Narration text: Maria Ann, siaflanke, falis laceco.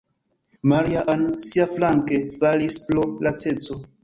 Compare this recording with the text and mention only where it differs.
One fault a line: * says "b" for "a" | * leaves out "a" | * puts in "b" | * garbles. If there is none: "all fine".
* puts in "pro"